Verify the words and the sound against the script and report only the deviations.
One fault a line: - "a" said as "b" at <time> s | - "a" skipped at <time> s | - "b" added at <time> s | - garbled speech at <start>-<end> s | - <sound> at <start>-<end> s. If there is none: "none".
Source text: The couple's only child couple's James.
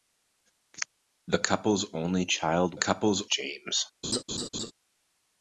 - laugh at 4.0-4.7 s